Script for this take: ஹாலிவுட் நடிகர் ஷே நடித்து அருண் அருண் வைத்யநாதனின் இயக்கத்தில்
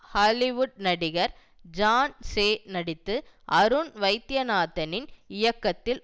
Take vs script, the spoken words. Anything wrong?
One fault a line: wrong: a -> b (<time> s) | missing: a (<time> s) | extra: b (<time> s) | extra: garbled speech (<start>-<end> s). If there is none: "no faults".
extra: ஜான் (1.7 s)
missing: அருண் (3.9 s)